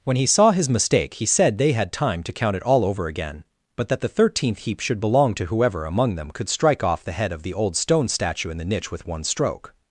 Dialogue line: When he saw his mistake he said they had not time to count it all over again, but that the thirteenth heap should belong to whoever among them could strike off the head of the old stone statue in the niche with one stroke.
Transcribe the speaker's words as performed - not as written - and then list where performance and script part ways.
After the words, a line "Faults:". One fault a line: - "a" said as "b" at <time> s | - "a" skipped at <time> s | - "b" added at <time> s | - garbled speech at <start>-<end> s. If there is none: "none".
When he saw his mistake he said they had time to count it all over again, but that the thirteenth heap should belong to whoever among them could strike off the head of the old stone statue in the niche with one stroke.
Faults:
- "not" skipped at 1.9 s